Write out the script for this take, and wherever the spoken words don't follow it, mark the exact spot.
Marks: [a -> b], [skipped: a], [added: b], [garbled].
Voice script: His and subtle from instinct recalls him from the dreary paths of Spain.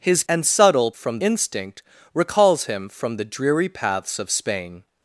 His and subtle from instinct recalls him from the dreary paths of Spain.